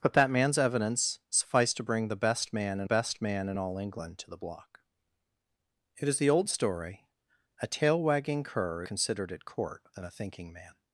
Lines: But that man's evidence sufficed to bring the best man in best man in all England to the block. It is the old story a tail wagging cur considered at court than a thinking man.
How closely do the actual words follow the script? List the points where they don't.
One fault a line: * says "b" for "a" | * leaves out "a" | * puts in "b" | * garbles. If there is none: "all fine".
all fine